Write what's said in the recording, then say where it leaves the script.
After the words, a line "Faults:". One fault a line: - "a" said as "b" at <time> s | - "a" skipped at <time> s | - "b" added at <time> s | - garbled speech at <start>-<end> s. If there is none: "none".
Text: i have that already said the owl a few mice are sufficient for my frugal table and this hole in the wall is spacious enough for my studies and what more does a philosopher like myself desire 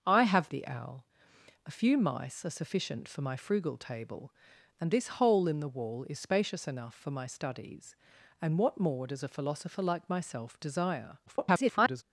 i have the owl a few mice are sufficient for my frugal table and this hole in the wall is spacious enough for my studies and what more does a philosopher like myself desire [garbled]
Faults:
- "that already said" skipped at 0.5 s
- garbled speech at 11.3-12.0 s